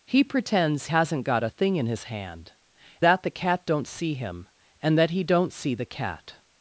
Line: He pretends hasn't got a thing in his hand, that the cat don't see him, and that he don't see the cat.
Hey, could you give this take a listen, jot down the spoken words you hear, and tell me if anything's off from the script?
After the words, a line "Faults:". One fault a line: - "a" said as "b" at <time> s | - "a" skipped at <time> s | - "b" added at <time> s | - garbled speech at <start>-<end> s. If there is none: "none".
He pretends hasn't got a thing in his hand, that the cat don't see him, and that he don't see the cat.
Faults:
none